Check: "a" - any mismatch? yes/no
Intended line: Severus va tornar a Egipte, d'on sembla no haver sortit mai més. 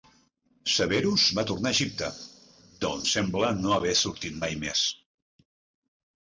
no